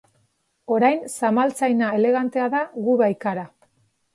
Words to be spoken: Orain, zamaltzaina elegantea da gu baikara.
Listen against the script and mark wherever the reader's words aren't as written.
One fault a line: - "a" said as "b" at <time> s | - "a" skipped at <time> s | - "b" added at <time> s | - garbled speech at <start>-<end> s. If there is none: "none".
none